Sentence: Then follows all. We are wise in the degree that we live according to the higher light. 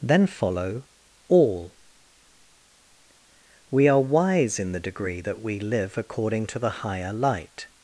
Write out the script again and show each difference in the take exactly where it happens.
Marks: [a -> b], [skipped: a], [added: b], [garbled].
Then [follows -> follow] all. We are wise in the degree that we live according to the higher light.